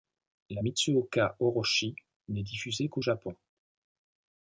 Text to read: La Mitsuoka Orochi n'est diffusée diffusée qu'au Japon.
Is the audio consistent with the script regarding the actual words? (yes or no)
no